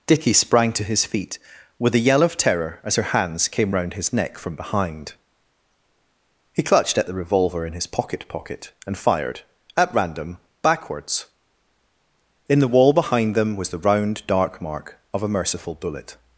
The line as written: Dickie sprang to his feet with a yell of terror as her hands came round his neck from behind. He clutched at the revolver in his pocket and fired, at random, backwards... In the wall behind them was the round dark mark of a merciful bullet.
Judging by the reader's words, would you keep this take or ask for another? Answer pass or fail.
fail